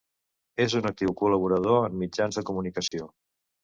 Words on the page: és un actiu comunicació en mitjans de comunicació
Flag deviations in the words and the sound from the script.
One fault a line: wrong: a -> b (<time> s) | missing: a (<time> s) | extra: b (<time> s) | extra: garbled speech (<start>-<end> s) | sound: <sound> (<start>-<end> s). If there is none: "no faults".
wrong: comunicació -> col·laborador (1.2 s)
sound: dropout (2.9-2.9 s)